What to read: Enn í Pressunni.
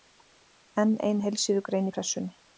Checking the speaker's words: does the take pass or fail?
fail